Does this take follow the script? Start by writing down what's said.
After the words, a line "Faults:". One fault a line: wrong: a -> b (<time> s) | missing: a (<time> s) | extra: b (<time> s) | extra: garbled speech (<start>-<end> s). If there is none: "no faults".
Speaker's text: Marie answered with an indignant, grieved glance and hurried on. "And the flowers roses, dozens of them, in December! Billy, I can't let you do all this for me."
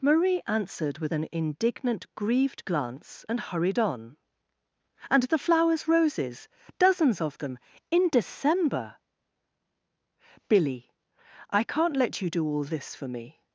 Marie answered with an indignant, grieved glance and hurried on. "And the flowers roses, dozens of them, in December! Billy, I can't let you do all this for me."
Faults:
no faults